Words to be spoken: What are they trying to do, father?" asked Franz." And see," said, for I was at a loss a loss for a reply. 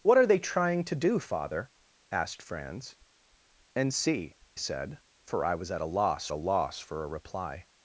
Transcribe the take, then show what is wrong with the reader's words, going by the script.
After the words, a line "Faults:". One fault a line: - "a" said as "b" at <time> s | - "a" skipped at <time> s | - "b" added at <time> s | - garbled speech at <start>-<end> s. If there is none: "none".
What are they trying to do, father?" asked Franz." And see," said, for I was at a loss a loss for a reply.
Faults:
none